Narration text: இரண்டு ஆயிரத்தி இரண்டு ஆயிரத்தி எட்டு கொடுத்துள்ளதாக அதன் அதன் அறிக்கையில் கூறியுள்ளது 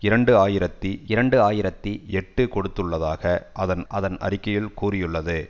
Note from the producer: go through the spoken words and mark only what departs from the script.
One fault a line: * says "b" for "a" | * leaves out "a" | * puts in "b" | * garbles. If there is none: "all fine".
all fine